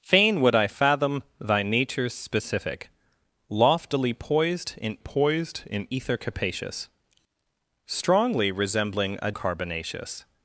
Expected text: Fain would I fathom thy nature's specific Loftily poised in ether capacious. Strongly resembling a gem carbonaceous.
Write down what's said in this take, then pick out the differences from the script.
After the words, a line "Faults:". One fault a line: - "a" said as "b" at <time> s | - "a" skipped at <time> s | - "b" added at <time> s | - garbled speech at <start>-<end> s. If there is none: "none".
Fain would I fathom thy nature's specific Loftily poised in poised in ether capacious. Strongly resembling a carbonaceous.
Faults:
- "poised in" added at 5.0 s
- "gem" skipped at 9.3 s